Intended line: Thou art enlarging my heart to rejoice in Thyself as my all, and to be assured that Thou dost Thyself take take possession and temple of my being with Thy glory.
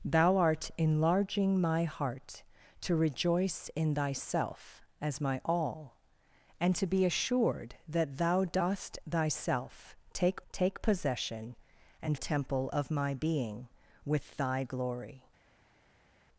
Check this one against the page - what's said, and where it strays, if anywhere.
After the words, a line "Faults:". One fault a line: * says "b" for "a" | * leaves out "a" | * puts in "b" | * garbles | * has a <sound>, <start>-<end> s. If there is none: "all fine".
Thou art enlarging my heart to rejoice in Thyself as my all, and to be assured that Thou dost Thyself take take possession and temple of my being with Thy glory.
Faults:
all fine